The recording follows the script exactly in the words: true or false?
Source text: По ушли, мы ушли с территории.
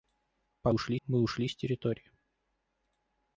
true